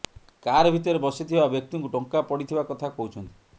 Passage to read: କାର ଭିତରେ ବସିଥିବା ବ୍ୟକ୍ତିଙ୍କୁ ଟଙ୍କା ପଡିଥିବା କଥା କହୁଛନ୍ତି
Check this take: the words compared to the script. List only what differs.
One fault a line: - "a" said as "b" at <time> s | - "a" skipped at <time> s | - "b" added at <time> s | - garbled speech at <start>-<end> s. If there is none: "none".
none